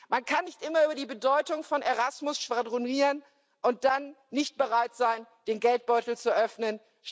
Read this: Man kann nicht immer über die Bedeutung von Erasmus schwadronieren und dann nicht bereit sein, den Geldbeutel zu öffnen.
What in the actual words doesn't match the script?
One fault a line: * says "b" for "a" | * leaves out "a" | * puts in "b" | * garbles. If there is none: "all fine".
all fine